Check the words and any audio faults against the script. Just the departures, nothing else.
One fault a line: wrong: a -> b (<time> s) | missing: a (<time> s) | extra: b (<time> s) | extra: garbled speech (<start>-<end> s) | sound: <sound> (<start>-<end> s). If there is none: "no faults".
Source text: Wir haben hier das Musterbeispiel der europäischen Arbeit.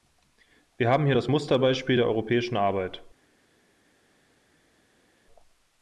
no faults